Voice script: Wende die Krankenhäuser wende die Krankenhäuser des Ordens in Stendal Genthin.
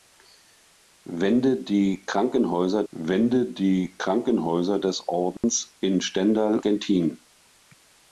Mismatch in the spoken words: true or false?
false